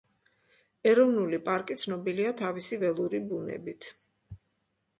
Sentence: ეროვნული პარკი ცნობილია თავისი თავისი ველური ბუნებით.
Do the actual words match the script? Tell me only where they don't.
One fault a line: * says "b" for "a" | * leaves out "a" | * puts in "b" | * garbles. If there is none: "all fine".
* leaves out "თავისი"